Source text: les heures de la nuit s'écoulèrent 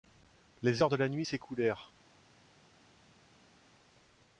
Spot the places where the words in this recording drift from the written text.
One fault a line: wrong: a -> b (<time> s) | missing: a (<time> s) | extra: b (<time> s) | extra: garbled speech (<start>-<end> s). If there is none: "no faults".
no faults